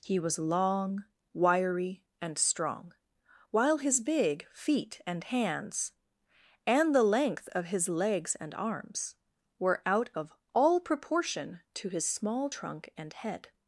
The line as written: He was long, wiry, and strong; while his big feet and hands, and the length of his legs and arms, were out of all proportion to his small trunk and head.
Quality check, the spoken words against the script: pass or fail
pass